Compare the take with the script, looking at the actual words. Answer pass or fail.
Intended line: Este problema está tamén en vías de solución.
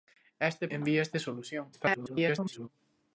fail